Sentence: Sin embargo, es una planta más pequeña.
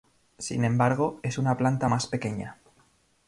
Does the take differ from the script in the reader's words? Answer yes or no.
no